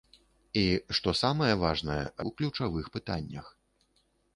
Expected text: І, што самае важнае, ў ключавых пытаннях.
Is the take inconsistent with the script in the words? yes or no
no